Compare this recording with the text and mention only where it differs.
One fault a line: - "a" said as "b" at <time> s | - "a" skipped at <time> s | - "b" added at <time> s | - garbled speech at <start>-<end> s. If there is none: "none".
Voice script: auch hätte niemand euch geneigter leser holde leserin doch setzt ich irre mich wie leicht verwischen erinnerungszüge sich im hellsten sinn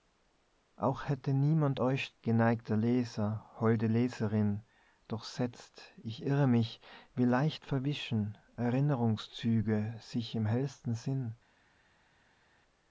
none